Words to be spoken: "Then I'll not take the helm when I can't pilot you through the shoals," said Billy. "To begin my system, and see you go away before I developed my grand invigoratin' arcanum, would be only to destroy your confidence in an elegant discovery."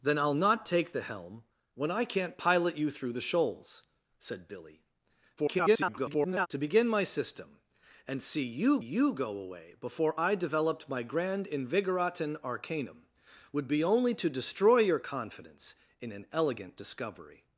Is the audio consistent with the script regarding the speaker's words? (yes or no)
no